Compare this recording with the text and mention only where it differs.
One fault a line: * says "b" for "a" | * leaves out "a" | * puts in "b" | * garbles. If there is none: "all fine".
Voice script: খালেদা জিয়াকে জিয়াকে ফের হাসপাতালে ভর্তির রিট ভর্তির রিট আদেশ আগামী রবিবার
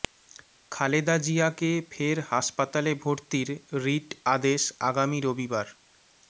* leaves out "জিয়াকে"
* leaves out "ভর্তির রিট"